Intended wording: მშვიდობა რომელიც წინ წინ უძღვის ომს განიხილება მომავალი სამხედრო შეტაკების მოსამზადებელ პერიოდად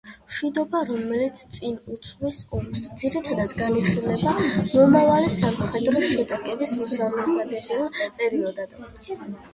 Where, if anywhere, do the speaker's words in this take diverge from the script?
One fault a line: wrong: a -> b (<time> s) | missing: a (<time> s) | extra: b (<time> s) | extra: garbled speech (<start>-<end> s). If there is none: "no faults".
missing: წინ (1.8 s)
extra: ძირითადად (3.0 s)